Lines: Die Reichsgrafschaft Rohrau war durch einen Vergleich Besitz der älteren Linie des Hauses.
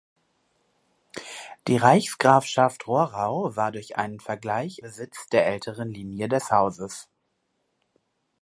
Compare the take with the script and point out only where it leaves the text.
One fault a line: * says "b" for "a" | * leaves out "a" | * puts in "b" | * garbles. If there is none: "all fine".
all fine